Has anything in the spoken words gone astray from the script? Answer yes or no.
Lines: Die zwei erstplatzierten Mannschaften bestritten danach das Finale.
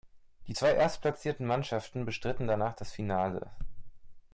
no